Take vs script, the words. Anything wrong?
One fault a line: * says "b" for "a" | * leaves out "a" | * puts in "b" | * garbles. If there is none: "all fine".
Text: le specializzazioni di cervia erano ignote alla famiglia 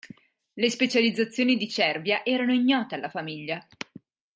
all fine